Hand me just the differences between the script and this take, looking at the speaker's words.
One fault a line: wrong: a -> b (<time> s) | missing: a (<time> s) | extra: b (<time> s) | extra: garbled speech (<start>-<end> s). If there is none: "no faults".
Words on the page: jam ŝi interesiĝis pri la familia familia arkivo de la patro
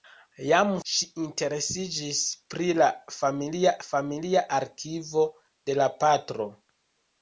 no faults